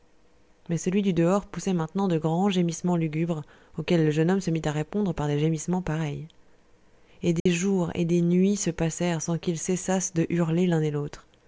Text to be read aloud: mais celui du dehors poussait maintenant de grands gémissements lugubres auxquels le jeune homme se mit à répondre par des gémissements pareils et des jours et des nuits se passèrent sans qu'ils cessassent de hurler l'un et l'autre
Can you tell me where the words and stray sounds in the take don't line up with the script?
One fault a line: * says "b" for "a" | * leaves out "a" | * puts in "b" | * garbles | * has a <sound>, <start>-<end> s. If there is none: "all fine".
* has a dropout, 7.4-7.5 s